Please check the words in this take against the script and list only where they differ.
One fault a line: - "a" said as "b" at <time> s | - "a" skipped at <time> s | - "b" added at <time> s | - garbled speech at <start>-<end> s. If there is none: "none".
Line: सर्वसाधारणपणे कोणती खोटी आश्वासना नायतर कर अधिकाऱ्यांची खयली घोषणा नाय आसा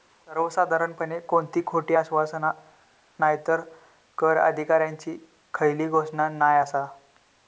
none